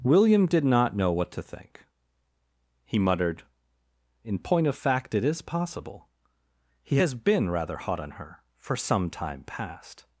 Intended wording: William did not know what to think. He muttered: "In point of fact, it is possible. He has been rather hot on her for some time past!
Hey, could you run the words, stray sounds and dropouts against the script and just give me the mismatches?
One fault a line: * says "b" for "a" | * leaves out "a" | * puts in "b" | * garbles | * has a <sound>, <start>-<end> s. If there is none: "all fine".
all fine